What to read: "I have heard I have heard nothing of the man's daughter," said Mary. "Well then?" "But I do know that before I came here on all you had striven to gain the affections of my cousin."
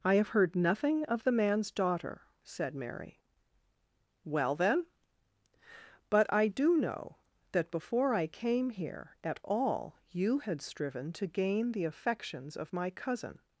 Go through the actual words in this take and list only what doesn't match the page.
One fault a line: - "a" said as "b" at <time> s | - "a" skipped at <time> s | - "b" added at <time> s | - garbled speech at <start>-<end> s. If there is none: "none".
- "I have heard" skipped at 0.6 s
- "on" said as "at" at 9.2 s